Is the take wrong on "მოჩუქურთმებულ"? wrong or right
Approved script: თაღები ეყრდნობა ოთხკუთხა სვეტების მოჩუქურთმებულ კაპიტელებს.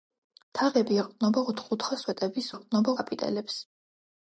wrong